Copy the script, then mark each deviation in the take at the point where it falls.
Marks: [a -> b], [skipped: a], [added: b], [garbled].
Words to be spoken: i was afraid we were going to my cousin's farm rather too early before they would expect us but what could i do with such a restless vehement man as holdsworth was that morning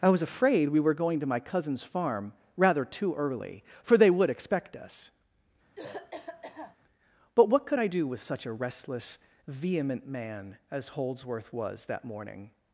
i was afraid we were going to my cousin's farm rather too early [before -> for] they would expect us but what could i do with such a restless vehement man as holdsworth was that morning